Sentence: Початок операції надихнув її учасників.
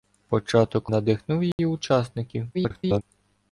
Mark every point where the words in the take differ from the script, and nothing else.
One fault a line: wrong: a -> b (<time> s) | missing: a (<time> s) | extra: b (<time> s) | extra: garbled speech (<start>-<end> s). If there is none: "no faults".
missing: операції (0.9 s)
extra: garbled speech (2.5-3.0 s)